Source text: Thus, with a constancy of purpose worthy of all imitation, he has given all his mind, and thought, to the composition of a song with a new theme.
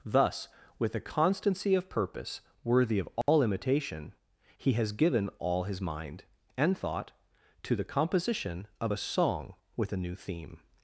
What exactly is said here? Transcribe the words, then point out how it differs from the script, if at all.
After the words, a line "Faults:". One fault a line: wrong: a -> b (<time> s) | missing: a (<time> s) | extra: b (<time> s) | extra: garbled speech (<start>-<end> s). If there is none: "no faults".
Thus, with a constancy of purpose worthy of all imitation, he has given all his mind, and thought, to the composition of a song with a new theme.
Faults:
no faults